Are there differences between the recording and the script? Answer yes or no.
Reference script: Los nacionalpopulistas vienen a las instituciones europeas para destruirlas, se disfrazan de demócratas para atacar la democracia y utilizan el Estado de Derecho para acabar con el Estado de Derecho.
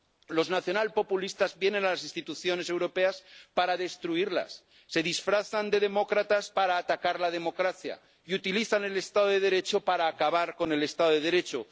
no